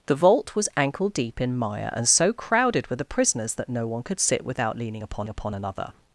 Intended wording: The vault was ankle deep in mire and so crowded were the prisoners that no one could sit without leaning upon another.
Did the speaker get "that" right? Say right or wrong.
right